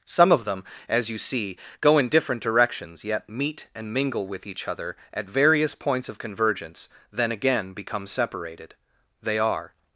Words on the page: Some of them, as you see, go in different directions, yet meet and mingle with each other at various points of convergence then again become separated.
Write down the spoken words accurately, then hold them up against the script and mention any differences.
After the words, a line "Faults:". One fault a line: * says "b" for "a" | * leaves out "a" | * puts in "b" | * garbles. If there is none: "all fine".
Some of them, as you see, go in different directions, yet meet and mingle with each other at various points of convergence then again become separated. They are
Faults:
* puts in "They are"